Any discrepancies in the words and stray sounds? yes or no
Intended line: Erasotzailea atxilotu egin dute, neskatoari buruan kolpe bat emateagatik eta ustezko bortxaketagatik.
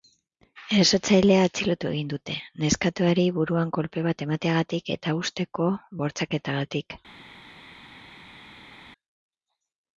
no